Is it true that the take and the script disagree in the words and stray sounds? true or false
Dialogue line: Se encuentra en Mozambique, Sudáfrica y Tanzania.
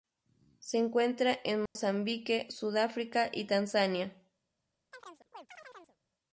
true